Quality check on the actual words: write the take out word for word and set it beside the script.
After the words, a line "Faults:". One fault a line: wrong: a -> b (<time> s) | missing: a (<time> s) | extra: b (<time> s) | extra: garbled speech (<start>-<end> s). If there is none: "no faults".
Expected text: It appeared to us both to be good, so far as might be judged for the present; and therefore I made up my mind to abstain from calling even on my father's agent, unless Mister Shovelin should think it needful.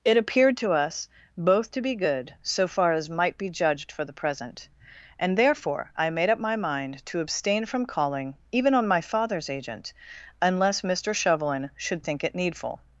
It appeared to us both to be good, so far as might be judged for the present; and therefore I made up my mind to abstain from calling even on my father's agent, unless Mister Shovelin should think it needful.
Faults:
no faults